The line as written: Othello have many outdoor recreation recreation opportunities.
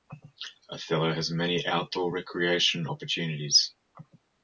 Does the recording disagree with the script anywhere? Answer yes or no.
yes